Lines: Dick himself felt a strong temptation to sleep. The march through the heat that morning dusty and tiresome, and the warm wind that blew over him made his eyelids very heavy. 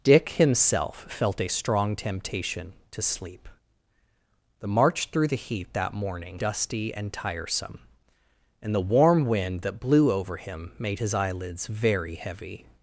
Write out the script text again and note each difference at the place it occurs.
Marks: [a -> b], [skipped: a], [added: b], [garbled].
Dick himself felt a strong temptation to sleep. The march through the heat that morning dusty and tiresome, and the warm wind that blew over him made his eyelids very heavy.